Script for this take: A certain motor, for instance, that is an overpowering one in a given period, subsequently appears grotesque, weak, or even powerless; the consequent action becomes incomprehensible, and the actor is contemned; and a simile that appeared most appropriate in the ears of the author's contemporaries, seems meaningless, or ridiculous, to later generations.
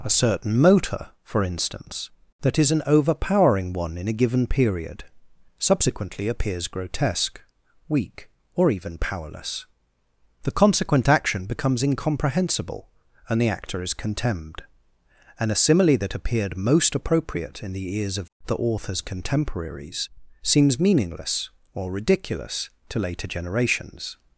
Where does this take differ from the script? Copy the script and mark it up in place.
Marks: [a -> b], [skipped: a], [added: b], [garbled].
A certain motor, for instance, that is an overpowering one in a given period, subsequently appears grotesque, weak, or even powerless; the consequent action becomes incomprehensible, and the actor is contemned; and a simile that appeared most appropriate in the ears of the author's contemporaries, seems meaningless, or ridiculous, to later generations.